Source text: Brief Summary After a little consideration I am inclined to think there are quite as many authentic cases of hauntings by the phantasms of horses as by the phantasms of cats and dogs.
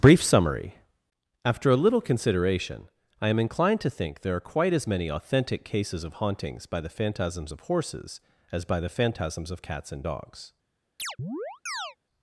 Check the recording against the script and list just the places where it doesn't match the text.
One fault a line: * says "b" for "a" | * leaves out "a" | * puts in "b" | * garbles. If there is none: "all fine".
all fine